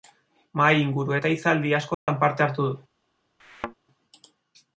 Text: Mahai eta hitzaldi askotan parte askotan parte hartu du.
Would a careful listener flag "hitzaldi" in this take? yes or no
no